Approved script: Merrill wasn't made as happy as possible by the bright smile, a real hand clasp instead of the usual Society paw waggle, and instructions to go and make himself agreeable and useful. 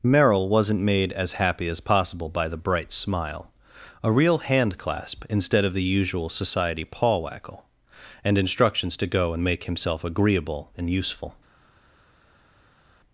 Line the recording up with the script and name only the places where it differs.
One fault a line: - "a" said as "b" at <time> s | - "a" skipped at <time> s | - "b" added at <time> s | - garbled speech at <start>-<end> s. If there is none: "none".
none